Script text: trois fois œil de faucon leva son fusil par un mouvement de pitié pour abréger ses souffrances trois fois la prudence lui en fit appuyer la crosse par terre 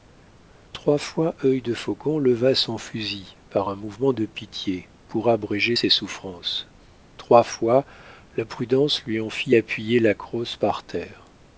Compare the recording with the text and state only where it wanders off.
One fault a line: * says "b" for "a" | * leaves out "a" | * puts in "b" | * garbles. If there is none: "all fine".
all fine